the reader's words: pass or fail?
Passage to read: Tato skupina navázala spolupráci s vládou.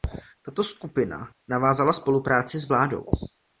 pass